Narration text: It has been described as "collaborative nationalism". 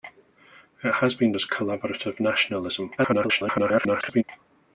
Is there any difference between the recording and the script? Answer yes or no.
yes